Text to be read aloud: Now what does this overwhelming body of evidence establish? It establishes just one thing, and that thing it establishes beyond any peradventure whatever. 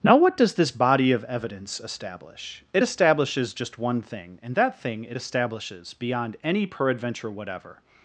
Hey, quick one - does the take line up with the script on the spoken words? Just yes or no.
no